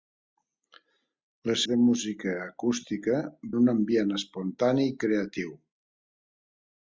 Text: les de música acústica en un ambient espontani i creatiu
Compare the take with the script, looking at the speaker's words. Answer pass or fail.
pass